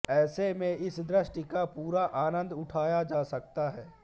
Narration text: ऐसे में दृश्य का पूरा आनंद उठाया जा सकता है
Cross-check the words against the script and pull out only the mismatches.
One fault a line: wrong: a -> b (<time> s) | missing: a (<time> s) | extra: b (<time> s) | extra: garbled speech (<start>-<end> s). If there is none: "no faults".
extra: इस (0.7 s)